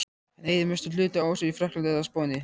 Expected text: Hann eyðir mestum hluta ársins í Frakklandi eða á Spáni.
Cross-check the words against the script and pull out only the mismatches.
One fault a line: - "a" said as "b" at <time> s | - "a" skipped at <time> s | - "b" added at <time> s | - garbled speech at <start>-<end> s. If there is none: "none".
none